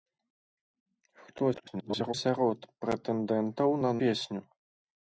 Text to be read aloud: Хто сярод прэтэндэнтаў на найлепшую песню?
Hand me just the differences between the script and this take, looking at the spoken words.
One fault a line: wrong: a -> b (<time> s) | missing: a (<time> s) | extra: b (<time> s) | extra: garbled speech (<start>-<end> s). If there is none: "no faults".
extra: garbled speech (1.5-2.1 s)
missing: найлепшую (3.9 s)